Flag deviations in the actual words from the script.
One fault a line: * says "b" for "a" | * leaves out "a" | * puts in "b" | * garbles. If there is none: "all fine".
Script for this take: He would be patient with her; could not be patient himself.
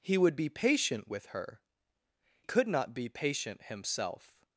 all fine